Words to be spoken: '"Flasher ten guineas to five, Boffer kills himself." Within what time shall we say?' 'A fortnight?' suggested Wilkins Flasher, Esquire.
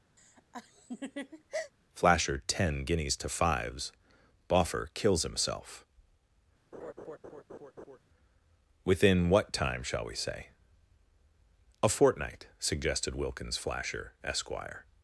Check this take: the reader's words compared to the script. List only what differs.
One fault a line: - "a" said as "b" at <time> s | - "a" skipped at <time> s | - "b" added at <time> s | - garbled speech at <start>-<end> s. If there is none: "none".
- "five" said as "fives" at 3.3 s